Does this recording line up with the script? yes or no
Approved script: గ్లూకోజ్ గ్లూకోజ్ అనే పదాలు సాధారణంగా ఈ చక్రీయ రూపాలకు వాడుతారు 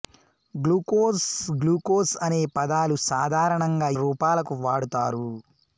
no